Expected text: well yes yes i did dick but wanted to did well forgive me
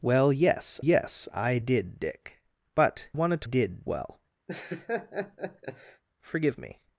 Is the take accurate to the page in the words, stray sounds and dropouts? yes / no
no